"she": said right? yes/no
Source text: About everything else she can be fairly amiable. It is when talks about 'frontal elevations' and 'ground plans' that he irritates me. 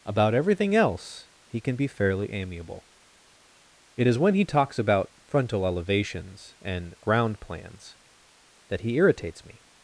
no